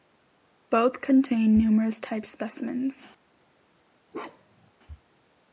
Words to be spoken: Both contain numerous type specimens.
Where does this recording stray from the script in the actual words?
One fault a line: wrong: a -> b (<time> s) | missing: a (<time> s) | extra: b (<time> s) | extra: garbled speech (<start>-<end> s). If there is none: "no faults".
no faults